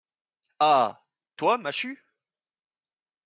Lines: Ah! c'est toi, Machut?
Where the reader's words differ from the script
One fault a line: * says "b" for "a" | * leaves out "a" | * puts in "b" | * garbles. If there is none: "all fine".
* leaves out "c'est"